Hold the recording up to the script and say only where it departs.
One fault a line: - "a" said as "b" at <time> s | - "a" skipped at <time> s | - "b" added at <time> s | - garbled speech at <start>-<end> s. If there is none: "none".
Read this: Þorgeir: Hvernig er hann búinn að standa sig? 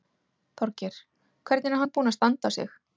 none